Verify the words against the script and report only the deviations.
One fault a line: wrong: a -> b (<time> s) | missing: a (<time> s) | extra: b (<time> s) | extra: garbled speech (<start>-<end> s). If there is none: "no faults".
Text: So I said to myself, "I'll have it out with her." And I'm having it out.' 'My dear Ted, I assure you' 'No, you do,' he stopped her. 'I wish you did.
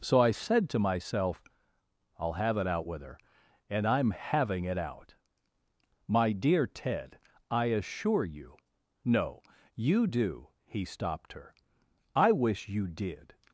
no faults